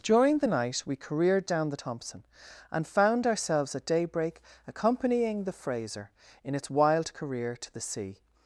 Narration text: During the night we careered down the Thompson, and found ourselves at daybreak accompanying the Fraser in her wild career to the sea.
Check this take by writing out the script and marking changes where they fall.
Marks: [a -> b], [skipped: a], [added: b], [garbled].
During the night we careered down the Thompson, and found ourselves at daybreak accompanying the Fraser in [her -> its] wild career to the sea.